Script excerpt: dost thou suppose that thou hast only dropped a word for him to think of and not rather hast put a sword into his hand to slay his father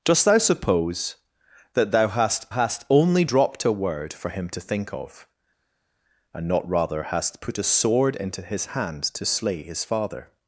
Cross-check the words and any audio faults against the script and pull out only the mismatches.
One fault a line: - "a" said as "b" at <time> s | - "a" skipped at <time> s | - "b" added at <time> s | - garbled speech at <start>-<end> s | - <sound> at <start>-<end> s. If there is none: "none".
- "hast" added at 2.5 s